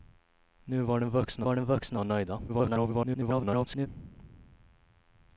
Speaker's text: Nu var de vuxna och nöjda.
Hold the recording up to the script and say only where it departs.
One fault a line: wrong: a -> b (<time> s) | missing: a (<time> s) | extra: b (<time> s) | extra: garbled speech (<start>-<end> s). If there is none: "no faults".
extra: var de vuxna (1.4 s)
extra: garbled speech (2.5-3.9 s)